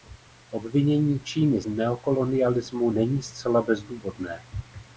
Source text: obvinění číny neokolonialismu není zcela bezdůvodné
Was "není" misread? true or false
false